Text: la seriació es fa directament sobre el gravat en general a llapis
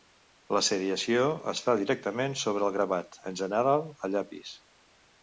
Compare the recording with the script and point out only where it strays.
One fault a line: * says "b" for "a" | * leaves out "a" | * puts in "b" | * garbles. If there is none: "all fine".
all fine